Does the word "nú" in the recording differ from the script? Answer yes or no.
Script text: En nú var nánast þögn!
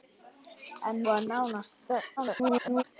yes